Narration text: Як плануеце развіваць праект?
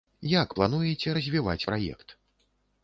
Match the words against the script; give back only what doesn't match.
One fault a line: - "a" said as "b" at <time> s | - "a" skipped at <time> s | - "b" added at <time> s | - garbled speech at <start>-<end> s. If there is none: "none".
none